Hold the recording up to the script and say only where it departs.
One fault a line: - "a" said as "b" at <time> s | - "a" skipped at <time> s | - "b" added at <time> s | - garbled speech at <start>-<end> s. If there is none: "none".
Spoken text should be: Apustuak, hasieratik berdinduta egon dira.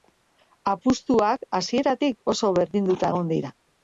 - "oso" added at 2.3 s